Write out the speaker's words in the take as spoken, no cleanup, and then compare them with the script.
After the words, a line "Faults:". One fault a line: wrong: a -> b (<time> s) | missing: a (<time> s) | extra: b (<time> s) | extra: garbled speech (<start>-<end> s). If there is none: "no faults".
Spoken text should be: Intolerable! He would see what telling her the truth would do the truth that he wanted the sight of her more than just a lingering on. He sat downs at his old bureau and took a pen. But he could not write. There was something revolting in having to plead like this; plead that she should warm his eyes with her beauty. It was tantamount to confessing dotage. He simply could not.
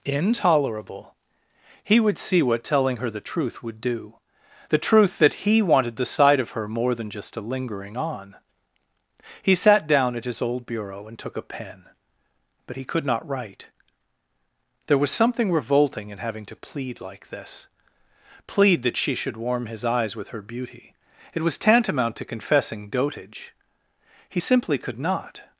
Intolerable! He would see what telling her the truth would do the truth that he wanted the sight of her more than just a lingering on. He sat down at his old bureau and took a pen. But he could not write. There was something revolting in having to plead like this; plead that she should warm his eyes with her beauty. It was tantamount to confessing dotage. He simply could not.
Faults:
wrong: downs -> down (9.9 s)